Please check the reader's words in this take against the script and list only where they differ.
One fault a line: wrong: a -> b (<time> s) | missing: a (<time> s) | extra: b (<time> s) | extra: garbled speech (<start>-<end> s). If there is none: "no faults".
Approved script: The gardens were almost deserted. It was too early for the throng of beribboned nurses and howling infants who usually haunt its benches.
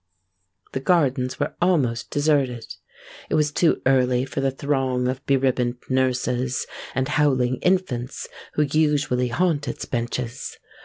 no faults